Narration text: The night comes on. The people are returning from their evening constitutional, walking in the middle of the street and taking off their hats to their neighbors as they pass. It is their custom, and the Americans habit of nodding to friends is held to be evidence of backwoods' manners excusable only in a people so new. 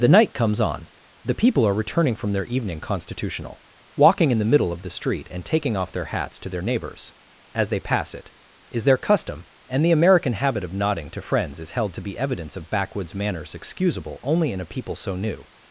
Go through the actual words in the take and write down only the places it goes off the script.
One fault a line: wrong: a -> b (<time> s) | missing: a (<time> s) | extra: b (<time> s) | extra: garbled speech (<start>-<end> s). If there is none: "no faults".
wrong: Americans -> American (9.9 s)